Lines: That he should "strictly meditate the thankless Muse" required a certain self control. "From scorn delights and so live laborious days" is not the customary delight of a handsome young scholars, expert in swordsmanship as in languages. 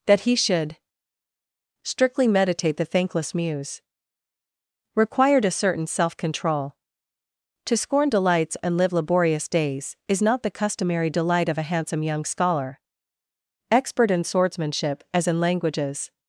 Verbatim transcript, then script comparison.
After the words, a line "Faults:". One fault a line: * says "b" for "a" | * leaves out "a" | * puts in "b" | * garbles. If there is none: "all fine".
That he should "strictly meditate the thankless Muse" required a certain self control. "To scorn delights and live laborious days" is not the customary delight of a handsome young scholar, expert in swordsmanship as in languages.
Faults:
* says "To" for "From"
* leaves out "so"
* says "scholar" for "scholars"